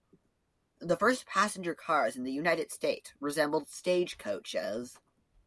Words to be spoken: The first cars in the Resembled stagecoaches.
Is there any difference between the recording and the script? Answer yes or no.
yes